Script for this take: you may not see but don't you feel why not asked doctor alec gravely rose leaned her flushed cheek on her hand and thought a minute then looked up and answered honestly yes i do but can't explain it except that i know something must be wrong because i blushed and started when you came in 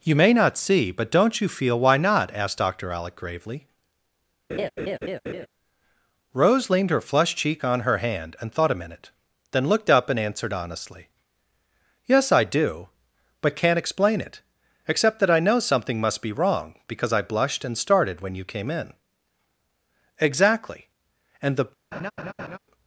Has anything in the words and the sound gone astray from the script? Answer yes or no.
yes